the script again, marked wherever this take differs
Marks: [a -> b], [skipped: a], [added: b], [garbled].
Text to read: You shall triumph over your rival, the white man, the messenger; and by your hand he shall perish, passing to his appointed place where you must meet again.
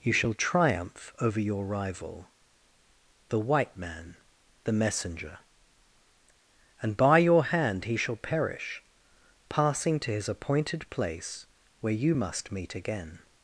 You shall triumph over your rival, the white man, the messenger; and by your hand he shall perish, passing to his appointed place where you must meet again.